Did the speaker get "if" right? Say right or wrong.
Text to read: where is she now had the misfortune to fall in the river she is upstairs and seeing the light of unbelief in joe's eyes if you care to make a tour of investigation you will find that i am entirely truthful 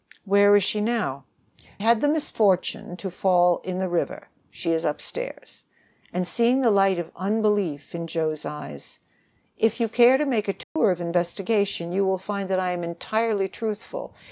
right